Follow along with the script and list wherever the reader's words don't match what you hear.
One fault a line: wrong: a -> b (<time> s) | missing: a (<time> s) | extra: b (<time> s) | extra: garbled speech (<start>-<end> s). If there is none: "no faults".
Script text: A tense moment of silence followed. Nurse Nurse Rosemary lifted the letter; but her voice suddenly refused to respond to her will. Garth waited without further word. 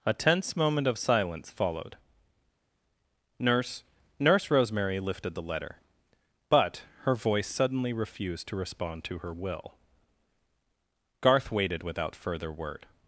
no faults